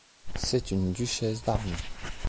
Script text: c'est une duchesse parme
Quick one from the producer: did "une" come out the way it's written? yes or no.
yes